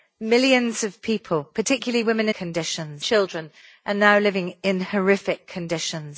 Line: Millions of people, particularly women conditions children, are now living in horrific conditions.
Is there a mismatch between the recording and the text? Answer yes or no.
no